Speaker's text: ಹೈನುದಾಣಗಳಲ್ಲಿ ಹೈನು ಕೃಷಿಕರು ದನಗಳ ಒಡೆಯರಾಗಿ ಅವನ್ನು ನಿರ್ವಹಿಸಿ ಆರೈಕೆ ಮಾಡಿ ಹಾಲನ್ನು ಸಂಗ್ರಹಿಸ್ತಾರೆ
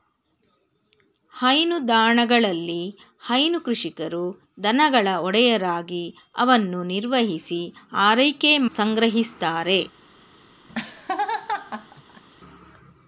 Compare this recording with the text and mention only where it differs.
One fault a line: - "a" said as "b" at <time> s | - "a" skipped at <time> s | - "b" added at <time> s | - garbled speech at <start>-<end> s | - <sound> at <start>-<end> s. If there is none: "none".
- "ಮಾಡಿ ಹಾಲನ್ನು" skipped at 8.5 s
- laugh at 10.7-12.2 s